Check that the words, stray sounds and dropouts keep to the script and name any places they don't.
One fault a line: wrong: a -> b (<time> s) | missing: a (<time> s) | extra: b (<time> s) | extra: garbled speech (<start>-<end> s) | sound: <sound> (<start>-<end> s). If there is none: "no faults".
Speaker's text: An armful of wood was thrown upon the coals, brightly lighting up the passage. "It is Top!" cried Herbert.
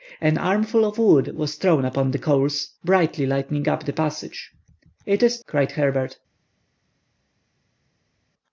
missing: Top (5.4 s)